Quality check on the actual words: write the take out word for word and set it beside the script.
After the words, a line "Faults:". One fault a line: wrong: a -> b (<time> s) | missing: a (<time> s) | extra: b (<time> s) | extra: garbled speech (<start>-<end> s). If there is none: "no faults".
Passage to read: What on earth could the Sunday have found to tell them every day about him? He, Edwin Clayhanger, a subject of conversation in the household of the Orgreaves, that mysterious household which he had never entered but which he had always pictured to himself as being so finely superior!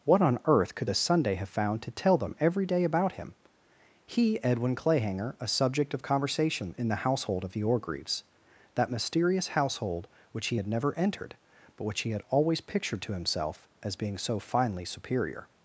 What on earth could the Sunday have found to tell them every day about him? He, Edwin Clayhanger, a subject of conversation in the household of the Orgreaves, that mysterious household which he had never entered but which he had always pictured to himself as being so finely superior!
Faults:
no faults